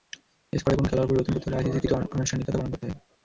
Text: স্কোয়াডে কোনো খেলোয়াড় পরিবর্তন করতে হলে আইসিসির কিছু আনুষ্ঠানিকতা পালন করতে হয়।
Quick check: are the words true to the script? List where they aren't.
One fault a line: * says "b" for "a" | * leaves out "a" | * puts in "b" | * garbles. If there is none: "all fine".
all fine